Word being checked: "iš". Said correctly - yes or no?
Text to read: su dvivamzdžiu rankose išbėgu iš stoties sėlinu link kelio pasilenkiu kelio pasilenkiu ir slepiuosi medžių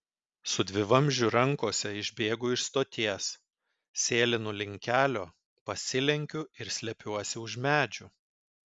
yes